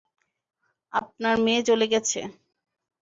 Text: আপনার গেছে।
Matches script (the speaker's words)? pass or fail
fail